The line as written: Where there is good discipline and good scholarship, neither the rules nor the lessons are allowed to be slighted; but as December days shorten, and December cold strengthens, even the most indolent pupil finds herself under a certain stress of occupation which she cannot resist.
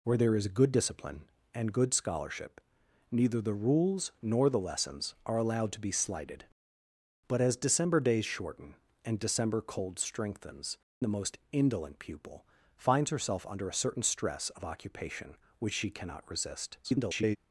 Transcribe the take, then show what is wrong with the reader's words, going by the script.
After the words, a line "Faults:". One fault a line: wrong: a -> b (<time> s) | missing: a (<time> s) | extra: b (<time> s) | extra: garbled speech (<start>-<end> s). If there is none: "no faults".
Where there is good discipline and good scholarship, neither the rules nor the lessons are allowed to be slighted; but as December days shorten, and December cold strengthens, the most indolent pupil finds herself under a certain stress of occupation which she cannot resist. [garbled]
Faults:
missing: even (10.8 s)
extra: garbled speech (16.8-17.4 s)